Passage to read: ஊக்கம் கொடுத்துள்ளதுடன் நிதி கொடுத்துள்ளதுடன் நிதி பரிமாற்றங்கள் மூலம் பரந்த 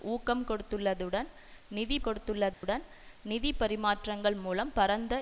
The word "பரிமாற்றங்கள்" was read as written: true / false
true